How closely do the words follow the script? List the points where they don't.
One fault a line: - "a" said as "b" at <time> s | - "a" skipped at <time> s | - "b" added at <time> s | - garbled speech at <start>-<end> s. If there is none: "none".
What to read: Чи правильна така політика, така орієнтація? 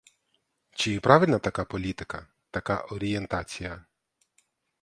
none